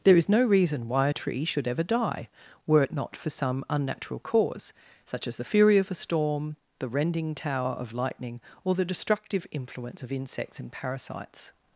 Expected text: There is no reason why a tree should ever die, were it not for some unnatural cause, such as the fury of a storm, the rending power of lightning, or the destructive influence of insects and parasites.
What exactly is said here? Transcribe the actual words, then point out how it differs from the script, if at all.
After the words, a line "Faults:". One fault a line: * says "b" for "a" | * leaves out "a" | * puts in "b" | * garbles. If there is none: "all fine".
There is no reason why a tree should ever die, were it not for some unnatural cause, such as the fury of a storm, the rending tower of lightning, or the destructive influence of insects and parasites.
Faults:
* says "tower" for "power"